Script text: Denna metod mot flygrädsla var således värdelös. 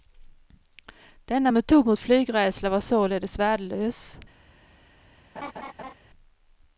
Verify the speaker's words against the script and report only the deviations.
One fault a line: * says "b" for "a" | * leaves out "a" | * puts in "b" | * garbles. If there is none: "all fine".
all fine